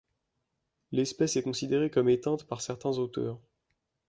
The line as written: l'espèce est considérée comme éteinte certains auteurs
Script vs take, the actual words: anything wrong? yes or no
yes